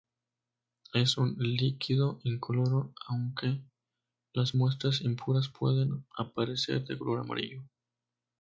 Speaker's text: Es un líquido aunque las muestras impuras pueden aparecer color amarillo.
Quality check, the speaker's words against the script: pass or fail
fail